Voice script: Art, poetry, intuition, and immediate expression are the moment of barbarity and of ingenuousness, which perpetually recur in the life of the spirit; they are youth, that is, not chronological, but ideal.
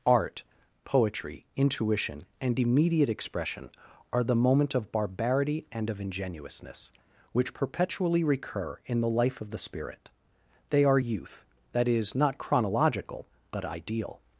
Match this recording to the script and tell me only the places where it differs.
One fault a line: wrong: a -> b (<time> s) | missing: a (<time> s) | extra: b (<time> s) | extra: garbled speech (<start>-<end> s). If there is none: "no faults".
no faults